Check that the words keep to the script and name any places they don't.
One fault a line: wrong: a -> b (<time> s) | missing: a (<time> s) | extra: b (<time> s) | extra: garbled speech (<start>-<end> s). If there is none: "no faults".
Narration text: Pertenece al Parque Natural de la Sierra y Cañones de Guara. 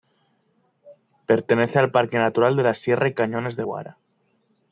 no faults